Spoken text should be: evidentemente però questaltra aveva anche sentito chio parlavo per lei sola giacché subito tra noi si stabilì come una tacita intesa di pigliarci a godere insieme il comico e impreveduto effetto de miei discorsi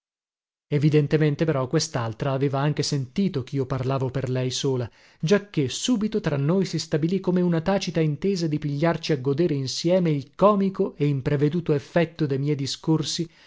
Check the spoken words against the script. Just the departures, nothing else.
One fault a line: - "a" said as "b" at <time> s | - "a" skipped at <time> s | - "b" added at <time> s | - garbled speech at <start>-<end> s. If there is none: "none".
none